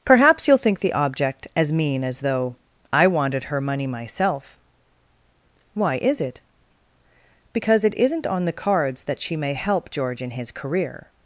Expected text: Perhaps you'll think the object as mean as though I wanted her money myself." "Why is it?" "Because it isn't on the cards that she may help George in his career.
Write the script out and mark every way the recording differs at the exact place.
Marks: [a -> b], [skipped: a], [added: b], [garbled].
Perhaps you'll think the object as mean as though I wanted her money myself." "Why is it?" "Because it isn't on the cards that she may help George in his career.